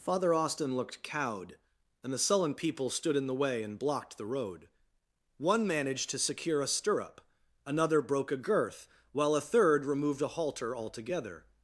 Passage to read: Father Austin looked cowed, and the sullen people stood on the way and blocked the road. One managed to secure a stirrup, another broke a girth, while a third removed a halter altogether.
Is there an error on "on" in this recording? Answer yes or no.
yes